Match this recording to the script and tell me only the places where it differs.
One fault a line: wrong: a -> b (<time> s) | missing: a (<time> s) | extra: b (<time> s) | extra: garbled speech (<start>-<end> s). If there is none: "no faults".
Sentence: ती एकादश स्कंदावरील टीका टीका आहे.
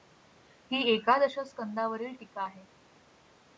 wrong: ती -> ही (0.7 s)
missing: टीका (2.4 s)